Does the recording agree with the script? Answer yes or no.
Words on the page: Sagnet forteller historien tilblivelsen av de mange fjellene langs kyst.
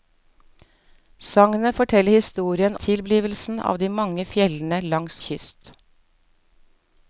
yes